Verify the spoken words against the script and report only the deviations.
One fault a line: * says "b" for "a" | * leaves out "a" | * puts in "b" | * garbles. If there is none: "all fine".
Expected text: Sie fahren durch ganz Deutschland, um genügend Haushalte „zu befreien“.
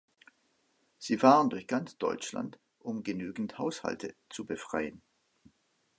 all fine